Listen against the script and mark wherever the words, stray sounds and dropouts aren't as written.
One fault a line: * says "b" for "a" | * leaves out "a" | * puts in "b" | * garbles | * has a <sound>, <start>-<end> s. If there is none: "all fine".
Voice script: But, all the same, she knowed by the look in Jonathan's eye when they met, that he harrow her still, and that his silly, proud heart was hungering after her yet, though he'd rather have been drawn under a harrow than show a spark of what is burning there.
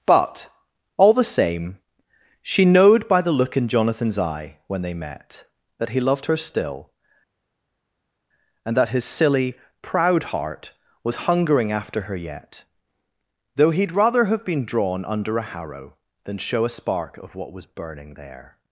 * says "loved" for "harrow"
* says "was" for "is"